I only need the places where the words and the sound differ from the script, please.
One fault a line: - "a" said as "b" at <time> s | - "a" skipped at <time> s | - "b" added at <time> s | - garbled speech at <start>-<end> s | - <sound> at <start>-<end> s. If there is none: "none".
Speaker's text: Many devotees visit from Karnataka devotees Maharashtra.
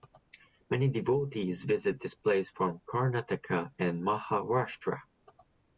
- "this place" added at 2.0 s
- "devotees" said as "and" at 3.8 s